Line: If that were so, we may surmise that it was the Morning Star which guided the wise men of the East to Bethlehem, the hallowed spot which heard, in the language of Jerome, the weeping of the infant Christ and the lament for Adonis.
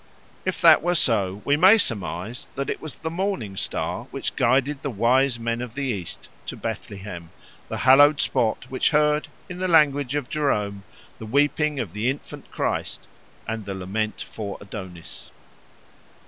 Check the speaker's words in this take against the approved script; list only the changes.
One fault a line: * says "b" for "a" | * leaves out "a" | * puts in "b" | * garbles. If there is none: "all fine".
all fine